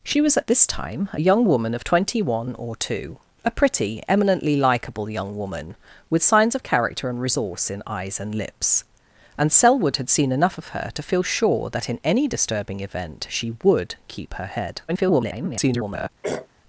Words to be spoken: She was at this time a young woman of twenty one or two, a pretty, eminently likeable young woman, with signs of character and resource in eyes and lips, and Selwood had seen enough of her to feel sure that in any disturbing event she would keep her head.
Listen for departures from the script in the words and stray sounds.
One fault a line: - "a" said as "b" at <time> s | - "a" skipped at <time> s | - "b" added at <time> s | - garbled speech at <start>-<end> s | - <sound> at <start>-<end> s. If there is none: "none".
- garbled speech at 14.9-16.1 s
- throat clearing at 16.2-16.5 s